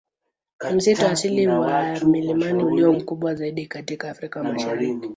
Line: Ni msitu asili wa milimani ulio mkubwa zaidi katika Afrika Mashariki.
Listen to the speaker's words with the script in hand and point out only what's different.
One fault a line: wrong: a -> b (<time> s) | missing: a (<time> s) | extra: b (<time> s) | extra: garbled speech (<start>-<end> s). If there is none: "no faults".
no faults